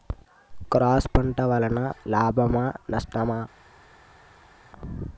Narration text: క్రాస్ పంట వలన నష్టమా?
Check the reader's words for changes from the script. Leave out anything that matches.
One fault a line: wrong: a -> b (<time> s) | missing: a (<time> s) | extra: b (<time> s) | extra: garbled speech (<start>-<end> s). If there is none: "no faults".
extra: లాభమా (2.1 s)